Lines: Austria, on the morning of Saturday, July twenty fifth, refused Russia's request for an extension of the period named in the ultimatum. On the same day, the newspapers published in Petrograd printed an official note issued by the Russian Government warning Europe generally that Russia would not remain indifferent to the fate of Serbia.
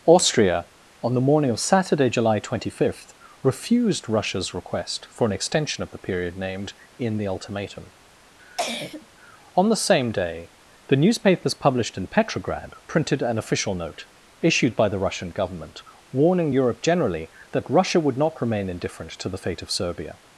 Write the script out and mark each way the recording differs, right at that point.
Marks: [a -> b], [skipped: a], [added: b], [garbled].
Austria, on the morning of Saturday, July twenty fifth, refused Russia's request for an extension of the period named in the ultimatum. On the same day, the newspapers published in Petrograd printed an official note issued by the Russian Government warning Europe generally that Russia would not remain indifferent to the fate of Serbia.